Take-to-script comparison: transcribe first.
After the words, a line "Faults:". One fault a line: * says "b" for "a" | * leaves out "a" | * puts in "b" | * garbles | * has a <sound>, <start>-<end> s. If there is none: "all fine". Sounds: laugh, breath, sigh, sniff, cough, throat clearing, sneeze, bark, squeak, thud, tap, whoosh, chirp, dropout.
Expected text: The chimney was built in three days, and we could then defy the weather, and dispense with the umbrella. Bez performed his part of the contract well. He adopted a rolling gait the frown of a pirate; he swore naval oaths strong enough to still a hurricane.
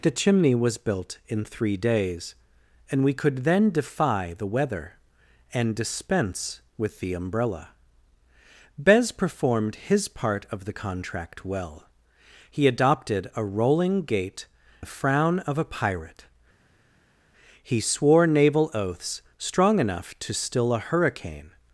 The chimney was built in three days, and we could then defy the weather, and dispense with the umbrella. Bez performed his part of the contract well. He adopted a rolling gait the frown of a pirate; he swore naval oaths strong enough to still a hurricane.
Faults:
all fine